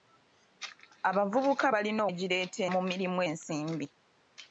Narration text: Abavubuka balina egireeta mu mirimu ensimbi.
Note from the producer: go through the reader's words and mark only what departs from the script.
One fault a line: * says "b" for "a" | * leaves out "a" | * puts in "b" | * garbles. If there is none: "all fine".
all fine